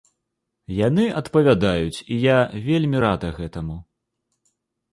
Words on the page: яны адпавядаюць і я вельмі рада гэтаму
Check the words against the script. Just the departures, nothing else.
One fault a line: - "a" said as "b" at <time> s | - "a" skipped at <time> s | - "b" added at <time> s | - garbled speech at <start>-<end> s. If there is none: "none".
none